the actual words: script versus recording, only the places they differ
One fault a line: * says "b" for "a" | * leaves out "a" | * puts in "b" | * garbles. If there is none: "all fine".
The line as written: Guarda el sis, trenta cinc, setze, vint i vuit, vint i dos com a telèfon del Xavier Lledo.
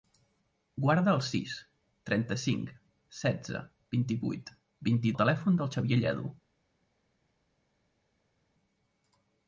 * leaves out "dos com"